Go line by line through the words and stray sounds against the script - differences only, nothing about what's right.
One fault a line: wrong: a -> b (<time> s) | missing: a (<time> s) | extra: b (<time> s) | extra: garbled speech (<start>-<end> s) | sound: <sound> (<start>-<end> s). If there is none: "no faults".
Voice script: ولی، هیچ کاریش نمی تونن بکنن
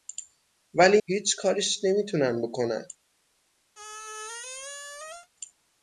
sound: squeak (3.7-5.3 s)